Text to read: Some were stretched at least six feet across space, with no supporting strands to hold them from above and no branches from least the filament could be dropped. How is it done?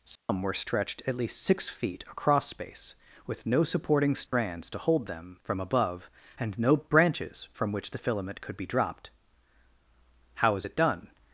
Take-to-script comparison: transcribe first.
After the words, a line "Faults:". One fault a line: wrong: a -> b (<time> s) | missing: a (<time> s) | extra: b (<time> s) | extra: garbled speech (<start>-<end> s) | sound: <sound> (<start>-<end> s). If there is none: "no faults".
Some were stretched at least six feet across space, with no supporting strands to hold them from above and no branches from which the filament could be dropped. How is it done?
Faults:
sound: dropout (0.2-0.3 s)
sound: dropout (4.3-4.3 s)
wrong: least -> which (7.7 s)